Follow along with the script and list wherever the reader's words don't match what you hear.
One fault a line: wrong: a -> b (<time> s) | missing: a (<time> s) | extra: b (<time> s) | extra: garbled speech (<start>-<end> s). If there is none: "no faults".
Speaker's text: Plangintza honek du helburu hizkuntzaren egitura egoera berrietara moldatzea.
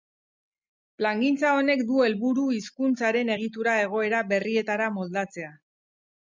no faults